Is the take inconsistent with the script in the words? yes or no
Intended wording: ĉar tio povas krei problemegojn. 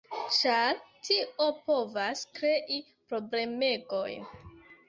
no